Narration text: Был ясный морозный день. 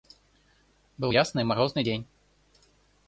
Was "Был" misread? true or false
false